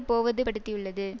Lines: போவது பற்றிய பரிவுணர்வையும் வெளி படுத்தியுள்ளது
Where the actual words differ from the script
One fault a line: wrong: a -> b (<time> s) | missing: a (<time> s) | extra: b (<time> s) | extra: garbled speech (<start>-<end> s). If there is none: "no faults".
missing: பற்றிய பரிவுணர்வையும் வெளி (0.4 s)